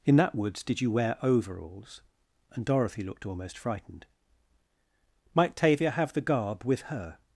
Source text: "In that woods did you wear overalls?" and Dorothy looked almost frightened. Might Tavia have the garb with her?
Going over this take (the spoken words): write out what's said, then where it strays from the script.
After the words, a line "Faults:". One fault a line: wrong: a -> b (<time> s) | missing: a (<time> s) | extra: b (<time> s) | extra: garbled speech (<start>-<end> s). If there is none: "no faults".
"In that woods did you wear overalls?" and Dorothy looked almost frightened. Might Tavia have the garb with her?
Faults:
no faults